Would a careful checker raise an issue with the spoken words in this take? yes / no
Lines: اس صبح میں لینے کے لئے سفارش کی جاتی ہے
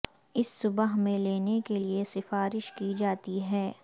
no